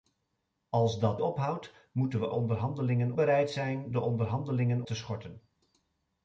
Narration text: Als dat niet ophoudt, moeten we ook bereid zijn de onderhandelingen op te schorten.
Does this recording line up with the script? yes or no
no